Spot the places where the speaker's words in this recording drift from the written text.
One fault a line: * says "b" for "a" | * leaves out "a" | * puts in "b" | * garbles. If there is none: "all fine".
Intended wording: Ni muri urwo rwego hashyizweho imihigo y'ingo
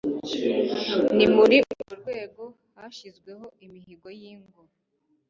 all fine